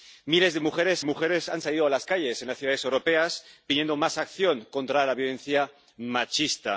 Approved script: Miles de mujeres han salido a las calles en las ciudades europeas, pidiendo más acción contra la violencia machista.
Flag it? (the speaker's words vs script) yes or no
yes